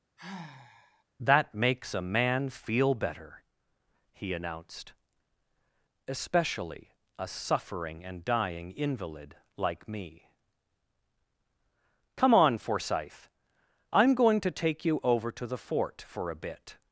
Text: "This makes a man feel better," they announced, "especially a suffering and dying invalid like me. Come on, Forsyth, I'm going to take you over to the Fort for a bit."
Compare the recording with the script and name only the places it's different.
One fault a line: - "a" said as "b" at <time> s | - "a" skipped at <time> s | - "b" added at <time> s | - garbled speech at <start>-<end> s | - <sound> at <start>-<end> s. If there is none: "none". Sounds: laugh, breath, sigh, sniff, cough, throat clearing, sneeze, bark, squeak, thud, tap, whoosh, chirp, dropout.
- sigh at 0.2-1.0 s
- "This" said as "That" at 1.2 s
- "they" said as "he" at 4.1 s